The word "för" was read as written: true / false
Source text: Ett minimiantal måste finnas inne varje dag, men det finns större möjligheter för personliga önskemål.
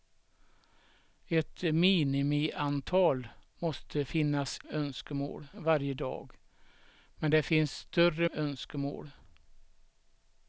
false